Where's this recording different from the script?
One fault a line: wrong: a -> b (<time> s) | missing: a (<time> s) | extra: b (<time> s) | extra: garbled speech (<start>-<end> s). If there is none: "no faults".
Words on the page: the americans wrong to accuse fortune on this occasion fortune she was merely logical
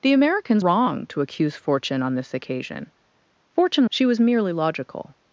no faults